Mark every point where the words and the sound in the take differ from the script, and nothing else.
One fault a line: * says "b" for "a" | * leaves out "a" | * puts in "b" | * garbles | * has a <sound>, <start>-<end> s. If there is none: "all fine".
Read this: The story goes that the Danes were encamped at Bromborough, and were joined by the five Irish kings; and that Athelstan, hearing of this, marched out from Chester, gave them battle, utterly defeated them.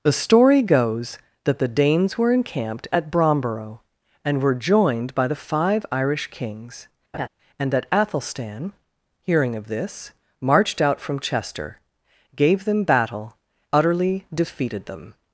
* has a laugh, 7.1-7.3 s